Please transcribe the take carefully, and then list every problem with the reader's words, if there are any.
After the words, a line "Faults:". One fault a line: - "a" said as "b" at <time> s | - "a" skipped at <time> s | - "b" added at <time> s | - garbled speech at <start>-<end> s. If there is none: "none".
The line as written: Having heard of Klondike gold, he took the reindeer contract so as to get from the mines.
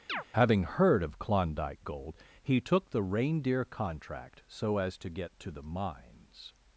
Having heard of Klondike gold, he took the reindeer contract so as to get to the mines.
Faults:
- "from" said as "to" at 5.4 s